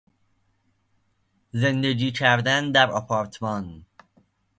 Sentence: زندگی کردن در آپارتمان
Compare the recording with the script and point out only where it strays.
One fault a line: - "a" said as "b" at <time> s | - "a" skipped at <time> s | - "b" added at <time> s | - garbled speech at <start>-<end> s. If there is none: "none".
none